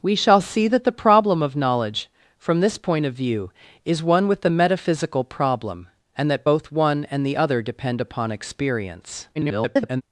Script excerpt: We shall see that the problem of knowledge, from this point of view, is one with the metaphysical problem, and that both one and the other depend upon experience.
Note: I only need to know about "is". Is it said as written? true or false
true